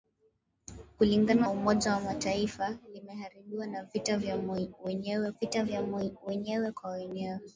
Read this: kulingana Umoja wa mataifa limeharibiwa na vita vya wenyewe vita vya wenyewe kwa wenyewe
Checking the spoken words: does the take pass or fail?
pass